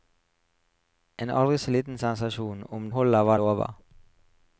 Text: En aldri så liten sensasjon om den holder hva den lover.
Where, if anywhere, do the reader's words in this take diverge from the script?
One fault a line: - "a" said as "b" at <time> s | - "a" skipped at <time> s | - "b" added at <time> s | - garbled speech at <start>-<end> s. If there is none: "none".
- "den" skipped at 2.9 s
- "den" skipped at 3.4 s